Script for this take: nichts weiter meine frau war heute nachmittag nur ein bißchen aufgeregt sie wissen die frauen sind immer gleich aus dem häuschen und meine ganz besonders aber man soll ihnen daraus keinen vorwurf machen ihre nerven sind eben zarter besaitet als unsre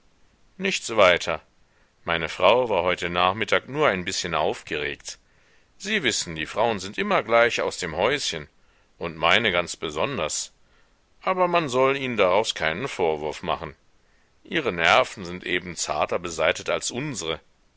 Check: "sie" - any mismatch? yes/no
no